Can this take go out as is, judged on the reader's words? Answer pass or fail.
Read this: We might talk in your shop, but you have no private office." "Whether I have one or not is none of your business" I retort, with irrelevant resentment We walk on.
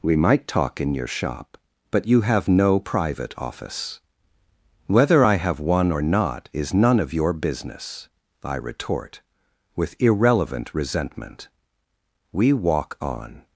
pass